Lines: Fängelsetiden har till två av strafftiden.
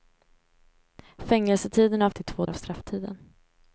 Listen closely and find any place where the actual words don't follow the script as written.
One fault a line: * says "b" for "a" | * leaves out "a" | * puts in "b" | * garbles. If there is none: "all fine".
all fine